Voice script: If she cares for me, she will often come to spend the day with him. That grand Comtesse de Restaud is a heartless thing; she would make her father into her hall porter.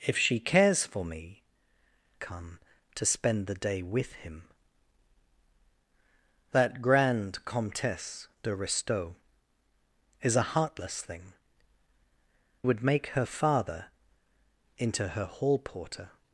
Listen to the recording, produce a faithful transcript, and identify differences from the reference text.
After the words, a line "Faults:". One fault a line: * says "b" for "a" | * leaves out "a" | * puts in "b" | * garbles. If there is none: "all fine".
If she cares for me, come to spend the day with him. That grand Comtesse de Restaud is a heartless thing; would make her father into her hall porter.
Faults:
* leaves out "she will often"
* leaves out "she"